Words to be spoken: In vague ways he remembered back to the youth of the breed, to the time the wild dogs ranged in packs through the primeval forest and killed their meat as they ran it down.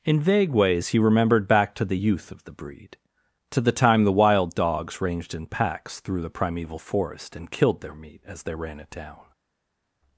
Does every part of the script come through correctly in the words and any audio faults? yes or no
yes